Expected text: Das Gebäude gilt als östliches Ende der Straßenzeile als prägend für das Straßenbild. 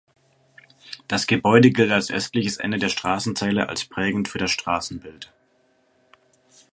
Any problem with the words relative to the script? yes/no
no